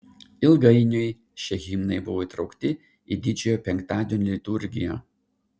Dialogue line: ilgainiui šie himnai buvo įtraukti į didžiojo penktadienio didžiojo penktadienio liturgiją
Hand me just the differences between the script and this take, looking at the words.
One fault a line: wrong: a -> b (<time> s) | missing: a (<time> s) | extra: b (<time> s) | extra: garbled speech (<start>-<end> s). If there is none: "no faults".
missing: didžiojo penktadienio (4.3 s)